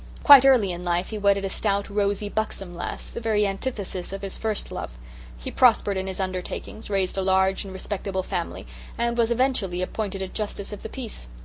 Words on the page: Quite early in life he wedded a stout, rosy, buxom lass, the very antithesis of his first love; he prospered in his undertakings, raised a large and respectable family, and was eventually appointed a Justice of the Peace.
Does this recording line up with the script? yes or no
yes